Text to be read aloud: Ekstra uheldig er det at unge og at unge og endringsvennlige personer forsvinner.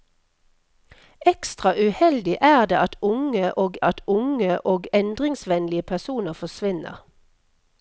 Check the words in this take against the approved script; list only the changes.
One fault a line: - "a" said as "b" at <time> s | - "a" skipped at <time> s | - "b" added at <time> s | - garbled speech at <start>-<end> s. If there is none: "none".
none